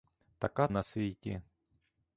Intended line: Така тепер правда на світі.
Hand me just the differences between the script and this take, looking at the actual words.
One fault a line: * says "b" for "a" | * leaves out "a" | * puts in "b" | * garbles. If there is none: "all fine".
* leaves out "тепер правда"